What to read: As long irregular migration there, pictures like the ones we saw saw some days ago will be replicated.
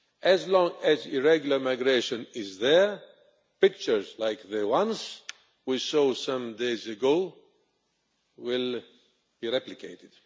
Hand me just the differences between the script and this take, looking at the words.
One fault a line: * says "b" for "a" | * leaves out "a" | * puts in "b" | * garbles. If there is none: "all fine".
* puts in "as"
* puts in "is"
* leaves out "saw"